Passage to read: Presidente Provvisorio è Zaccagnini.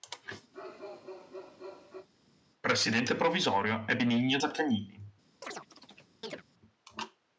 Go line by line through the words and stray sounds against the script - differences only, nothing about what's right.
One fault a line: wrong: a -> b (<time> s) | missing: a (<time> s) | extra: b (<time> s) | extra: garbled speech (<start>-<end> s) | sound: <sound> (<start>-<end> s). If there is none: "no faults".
sound: bark (0.5-2.1 s)
extra: Benigno (4.0 s)
sound: chirp (5.4-6.4 s)